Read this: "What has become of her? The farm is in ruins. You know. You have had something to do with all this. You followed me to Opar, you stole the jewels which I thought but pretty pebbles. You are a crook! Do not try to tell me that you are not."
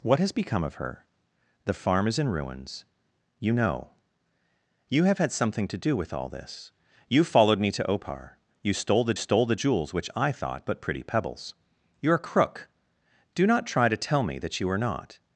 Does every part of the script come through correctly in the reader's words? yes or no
no